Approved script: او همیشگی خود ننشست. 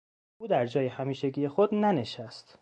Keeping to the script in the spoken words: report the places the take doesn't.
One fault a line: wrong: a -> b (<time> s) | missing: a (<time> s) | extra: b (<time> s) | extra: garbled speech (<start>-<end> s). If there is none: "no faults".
extra: در جای (0.5 s)